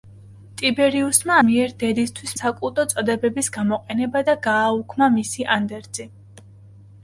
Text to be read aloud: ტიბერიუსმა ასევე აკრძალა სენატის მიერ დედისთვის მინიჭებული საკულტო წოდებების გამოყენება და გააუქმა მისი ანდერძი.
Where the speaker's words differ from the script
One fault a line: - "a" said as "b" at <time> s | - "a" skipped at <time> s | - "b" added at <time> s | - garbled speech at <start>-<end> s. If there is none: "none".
- "ასევე აკრძალა სენატის" skipped at 1.4 s
- "მინიჭებული" skipped at 2.4 s